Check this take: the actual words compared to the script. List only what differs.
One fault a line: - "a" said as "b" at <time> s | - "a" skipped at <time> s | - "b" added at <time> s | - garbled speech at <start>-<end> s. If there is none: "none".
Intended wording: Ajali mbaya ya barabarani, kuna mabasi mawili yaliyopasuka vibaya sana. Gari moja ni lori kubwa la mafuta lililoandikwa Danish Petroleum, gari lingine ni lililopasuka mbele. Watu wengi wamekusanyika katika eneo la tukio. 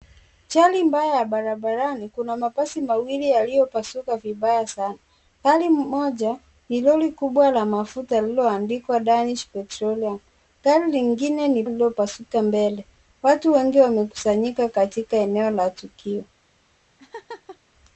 none